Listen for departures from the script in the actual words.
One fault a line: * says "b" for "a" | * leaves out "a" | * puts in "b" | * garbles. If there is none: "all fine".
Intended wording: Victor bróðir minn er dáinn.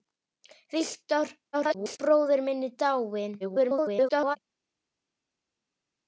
* garbles
* garbles